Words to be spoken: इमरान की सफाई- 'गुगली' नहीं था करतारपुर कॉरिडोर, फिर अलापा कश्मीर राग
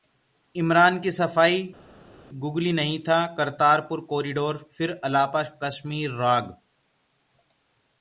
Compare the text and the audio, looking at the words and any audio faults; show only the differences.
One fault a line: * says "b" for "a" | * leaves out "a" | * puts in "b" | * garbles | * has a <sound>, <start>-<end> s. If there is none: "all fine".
all fine